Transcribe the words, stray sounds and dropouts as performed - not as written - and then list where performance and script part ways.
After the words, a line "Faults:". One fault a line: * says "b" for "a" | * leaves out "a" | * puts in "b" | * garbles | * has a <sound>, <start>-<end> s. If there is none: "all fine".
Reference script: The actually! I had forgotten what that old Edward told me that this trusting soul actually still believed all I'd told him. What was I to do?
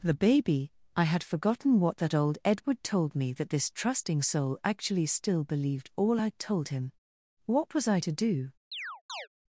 The baby! I had forgotten what that old Edward told me that this trusting soul actually still believed all I'd told him. What was I to do?
Faults:
* says "baby" for "actually"
* has a chirp, 8.7-9.3 s